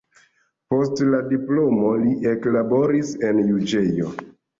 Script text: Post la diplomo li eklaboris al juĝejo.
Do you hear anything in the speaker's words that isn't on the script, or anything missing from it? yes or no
yes